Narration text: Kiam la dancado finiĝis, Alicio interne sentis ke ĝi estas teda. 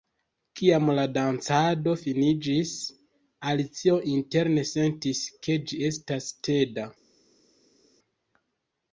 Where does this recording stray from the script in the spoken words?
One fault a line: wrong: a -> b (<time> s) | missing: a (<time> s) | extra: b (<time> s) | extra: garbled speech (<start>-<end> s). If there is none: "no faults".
no faults